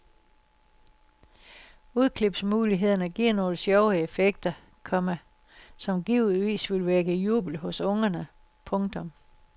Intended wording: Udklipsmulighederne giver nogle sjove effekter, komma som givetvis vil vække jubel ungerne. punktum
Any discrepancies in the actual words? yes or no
yes